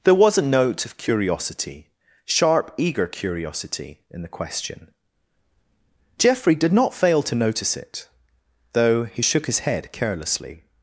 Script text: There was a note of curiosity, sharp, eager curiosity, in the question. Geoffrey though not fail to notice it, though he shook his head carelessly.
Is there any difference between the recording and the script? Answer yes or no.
yes